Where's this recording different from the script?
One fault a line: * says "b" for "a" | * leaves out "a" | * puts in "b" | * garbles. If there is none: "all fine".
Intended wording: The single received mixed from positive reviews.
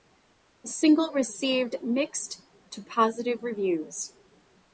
* says "to" for "from"